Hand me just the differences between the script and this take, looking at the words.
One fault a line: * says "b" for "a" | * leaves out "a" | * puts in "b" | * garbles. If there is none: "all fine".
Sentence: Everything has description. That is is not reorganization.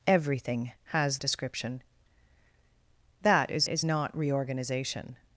all fine